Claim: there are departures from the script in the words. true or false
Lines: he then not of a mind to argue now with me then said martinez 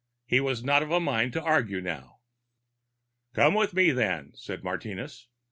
true